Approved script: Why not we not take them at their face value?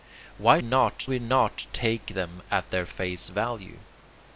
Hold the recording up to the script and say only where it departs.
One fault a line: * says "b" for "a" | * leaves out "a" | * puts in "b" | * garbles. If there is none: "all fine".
all fine